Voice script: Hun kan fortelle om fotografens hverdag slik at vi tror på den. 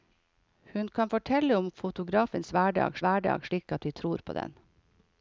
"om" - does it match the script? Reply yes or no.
yes